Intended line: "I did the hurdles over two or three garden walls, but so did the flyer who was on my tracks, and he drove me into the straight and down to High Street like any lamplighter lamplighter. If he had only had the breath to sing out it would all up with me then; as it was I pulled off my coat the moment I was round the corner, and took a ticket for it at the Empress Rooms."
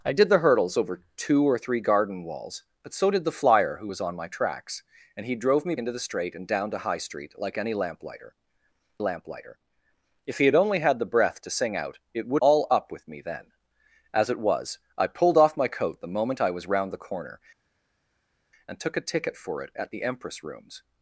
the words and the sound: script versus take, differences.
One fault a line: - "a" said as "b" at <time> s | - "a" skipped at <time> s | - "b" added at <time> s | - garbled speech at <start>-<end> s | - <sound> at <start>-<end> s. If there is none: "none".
none